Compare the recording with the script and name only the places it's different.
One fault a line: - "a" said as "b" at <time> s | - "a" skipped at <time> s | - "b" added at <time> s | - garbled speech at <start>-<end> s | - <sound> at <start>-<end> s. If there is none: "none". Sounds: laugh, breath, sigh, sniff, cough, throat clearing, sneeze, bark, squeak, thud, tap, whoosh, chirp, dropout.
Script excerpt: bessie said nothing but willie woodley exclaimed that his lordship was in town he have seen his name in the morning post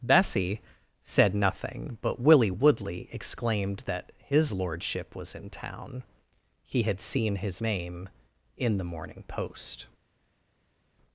- "have" said as "had" at 6.8 s